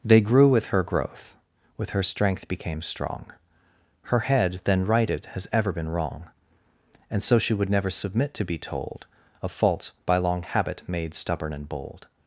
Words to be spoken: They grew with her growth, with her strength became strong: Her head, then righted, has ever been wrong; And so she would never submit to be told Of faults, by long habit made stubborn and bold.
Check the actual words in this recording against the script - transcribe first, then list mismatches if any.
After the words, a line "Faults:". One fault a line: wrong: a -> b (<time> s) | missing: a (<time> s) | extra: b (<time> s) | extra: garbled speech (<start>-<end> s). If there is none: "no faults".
They grew with her growth, with her strength became strong: Her head, then righted, has ever been wrong; And so she would never submit to be told Of faults, by long habit made stubborn and bold.
Faults:
no faults